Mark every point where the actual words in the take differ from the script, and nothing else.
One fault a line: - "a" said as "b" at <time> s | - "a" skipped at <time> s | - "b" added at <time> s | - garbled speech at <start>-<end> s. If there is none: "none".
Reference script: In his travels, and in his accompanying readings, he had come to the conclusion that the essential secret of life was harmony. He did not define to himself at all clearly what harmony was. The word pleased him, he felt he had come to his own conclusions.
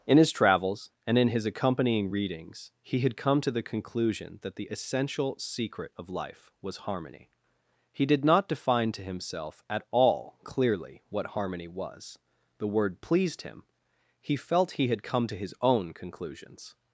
none